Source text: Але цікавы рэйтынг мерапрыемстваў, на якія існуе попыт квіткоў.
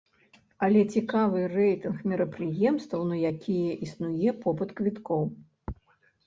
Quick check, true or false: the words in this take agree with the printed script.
true